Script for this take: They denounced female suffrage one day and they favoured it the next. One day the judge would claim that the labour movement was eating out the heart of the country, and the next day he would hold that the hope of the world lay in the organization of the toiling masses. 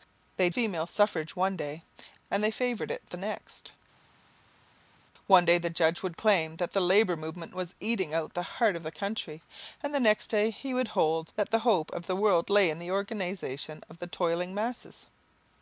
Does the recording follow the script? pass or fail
fail